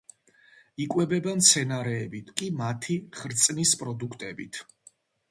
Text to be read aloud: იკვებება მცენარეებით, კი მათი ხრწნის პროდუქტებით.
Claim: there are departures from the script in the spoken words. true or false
false